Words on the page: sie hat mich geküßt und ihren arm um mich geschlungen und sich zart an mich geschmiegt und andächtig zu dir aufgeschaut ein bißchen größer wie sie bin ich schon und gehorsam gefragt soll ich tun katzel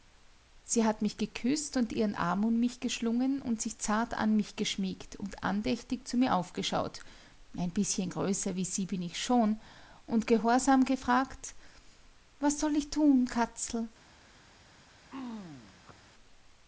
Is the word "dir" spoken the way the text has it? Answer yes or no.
no